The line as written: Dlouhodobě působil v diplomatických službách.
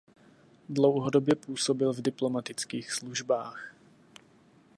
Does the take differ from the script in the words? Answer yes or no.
no